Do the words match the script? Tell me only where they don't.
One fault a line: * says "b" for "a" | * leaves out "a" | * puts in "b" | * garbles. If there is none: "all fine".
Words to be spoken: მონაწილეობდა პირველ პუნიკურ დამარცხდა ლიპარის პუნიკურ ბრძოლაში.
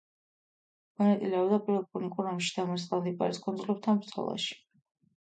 * puts in "ომში"
* says "კუნძულებთან" for "პუნიკურ"